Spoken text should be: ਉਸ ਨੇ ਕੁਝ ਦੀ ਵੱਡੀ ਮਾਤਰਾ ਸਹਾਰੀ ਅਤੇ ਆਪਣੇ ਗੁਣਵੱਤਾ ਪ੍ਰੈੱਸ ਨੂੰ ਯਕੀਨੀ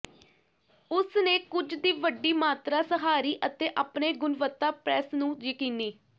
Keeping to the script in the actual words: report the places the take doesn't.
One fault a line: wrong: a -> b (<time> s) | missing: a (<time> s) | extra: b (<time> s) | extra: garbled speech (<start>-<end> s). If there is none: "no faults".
no faults